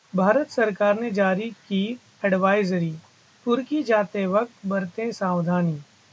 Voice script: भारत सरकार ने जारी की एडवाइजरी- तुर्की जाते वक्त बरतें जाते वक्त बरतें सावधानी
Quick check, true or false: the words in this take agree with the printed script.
false